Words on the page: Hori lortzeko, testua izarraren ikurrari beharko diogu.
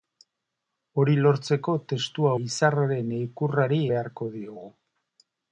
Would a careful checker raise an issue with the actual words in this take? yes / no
no